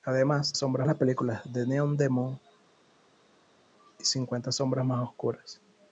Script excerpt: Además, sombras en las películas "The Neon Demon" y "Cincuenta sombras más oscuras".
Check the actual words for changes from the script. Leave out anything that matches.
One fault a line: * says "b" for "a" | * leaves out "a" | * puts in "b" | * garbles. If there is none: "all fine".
all fine